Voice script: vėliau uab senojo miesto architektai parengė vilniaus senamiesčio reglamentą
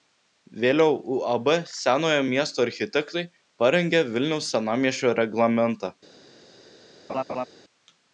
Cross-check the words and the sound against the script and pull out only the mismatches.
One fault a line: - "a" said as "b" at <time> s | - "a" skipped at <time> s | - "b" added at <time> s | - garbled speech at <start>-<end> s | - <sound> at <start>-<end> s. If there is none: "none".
- laugh at 7.1-7.5 s